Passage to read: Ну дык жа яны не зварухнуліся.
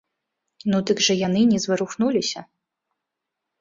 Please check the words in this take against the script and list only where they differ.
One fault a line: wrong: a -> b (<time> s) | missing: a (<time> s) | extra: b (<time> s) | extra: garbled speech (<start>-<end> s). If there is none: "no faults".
no faults